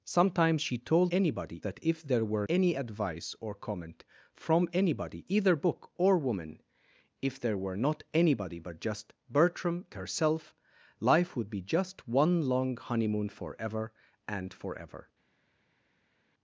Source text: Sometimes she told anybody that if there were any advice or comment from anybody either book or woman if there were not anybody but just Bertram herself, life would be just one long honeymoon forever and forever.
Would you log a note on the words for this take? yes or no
no